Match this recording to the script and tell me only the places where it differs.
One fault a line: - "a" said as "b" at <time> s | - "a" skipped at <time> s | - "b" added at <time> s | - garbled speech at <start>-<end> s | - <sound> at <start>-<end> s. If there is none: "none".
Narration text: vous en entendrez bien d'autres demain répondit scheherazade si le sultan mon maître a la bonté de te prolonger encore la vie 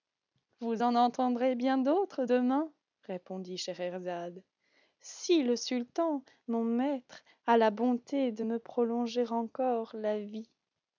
- "te" said as "me" at 8.4 s